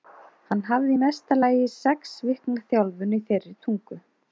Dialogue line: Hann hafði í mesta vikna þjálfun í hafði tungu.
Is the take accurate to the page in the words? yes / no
no